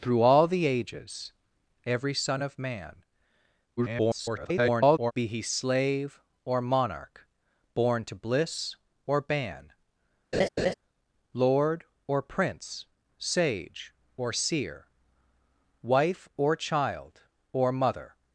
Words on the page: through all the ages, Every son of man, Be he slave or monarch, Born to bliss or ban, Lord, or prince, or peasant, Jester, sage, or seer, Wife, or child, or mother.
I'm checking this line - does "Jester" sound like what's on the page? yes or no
no